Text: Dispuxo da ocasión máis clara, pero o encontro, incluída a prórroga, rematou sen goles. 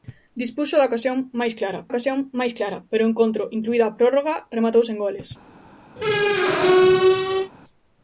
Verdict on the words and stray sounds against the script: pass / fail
fail